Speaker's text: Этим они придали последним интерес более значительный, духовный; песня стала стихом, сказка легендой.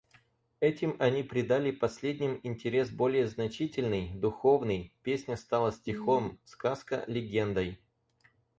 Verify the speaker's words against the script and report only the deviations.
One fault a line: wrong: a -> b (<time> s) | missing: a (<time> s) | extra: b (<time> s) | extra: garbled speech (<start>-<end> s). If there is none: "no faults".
no faults